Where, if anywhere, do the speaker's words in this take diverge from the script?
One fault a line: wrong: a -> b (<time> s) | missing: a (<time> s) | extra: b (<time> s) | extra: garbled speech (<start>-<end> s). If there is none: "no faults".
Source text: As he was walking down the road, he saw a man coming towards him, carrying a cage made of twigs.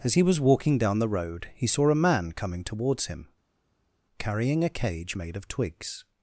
no faults